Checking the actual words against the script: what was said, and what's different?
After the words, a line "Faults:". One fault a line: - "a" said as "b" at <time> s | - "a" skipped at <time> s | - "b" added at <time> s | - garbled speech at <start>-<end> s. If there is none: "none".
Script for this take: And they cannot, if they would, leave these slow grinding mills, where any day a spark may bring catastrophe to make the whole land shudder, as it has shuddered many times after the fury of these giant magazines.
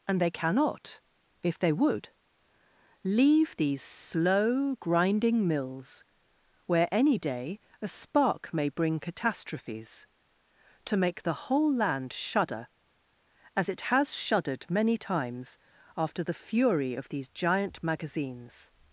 And they cannot, if they would, leave these slow grinding mills, where any day a spark may bring catastrophes to make the whole land shudder, as it has shuddered many times after the fury of these giant magazines.
Faults:
- "catastrophe" said as "catastrophes" at 9.0 s